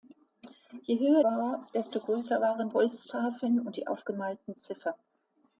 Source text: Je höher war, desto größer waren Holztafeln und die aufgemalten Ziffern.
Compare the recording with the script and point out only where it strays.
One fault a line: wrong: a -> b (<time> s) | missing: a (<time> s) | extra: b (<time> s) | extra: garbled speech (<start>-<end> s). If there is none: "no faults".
no faults